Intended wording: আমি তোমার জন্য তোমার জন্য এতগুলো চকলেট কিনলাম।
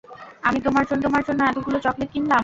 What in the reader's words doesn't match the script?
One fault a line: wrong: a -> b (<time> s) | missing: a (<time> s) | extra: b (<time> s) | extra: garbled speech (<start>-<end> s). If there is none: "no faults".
no faults